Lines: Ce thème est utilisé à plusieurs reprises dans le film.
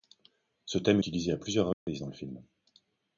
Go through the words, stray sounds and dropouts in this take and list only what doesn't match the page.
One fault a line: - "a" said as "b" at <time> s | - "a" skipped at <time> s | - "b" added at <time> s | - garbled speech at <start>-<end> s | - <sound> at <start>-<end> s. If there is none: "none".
- "est" skipped at 1.0 s
- dropout at 1.7-1.9 s